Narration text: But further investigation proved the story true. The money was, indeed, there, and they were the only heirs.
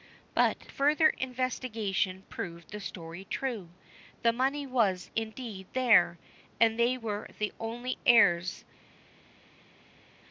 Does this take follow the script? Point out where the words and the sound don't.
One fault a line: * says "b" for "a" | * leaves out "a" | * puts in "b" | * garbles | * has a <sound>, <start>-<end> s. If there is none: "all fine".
all fine